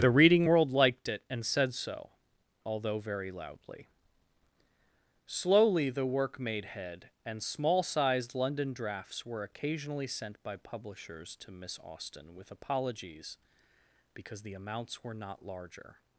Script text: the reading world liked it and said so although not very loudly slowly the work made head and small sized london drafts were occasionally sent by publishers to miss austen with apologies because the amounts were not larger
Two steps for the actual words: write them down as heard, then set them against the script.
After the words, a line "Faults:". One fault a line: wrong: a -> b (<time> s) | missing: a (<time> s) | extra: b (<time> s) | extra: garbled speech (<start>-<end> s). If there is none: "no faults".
the reading world liked it and said so although very loudly slowly the work made head and small sized london drafts were occasionally sent by publishers to miss austen with apologies because the amounts were not larger
Faults:
missing: not (3.0 s)